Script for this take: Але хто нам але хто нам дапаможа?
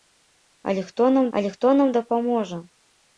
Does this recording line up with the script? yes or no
yes